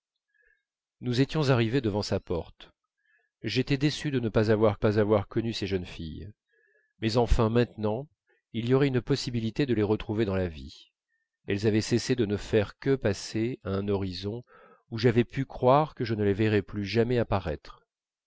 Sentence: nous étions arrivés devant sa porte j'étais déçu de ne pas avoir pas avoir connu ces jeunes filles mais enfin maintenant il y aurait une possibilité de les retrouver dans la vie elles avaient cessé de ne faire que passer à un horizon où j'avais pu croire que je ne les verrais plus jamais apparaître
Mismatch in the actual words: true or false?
false